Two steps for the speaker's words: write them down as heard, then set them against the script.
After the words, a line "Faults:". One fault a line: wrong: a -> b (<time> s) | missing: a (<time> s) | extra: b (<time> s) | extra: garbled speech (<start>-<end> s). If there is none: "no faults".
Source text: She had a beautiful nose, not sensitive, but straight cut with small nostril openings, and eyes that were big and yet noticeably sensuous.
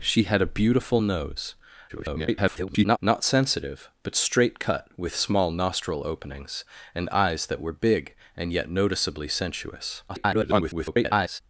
She had a beautiful nose, [garbled] not sensitive, but straight cut with small nostril openings, and eyes that were big and yet noticeably sensuous. [garbled]
Faults:
extra: garbled speech (1.9-3.0 s)
extra: garbled speech (10.1-11.4 s)